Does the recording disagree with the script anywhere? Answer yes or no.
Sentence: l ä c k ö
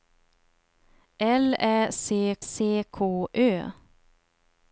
yes